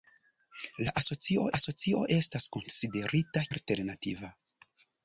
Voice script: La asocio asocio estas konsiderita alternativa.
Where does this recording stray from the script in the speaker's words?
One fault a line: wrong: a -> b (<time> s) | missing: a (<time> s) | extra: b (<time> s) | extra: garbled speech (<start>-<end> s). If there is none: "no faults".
no faults